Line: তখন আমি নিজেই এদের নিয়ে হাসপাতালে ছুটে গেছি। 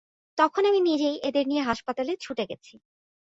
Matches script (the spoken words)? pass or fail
pass